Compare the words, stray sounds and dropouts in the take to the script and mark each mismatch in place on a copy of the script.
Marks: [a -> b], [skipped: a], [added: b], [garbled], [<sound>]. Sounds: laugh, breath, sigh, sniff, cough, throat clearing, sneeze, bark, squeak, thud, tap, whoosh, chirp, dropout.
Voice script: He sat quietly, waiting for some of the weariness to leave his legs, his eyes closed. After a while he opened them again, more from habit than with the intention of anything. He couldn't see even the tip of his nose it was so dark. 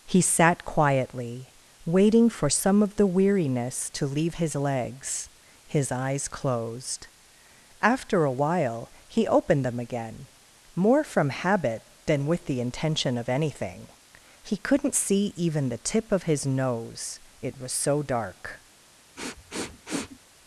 He sat quietly, waiting for some of the weariness to leave his legs, his eyes closed. After a while he opened them again, more from habit than with the intention of anything. He couldn't see even the tip of his nose it was so dark. [sniff]